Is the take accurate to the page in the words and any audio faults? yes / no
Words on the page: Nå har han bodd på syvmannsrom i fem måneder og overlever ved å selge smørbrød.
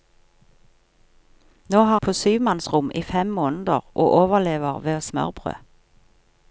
no